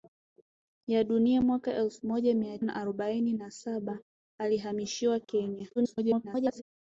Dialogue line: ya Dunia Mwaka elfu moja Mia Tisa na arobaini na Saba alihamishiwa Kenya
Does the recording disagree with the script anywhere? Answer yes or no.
yes